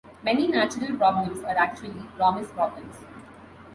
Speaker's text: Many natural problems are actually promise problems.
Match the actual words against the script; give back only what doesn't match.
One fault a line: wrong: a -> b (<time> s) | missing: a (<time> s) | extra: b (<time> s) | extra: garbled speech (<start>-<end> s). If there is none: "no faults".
no faults